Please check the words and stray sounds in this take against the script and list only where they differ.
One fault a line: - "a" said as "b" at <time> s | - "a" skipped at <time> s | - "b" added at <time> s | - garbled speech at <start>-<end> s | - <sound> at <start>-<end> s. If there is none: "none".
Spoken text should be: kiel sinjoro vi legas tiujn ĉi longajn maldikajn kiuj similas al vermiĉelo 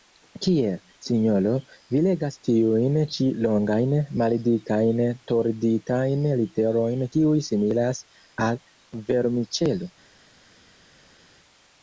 - "torditajn literojn" added at 5.3 s